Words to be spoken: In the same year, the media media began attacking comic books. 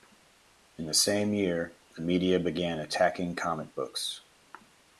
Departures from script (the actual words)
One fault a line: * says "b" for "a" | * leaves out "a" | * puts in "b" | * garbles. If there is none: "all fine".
* leaves out "media"